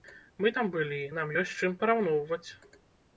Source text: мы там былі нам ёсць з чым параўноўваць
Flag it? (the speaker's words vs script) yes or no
no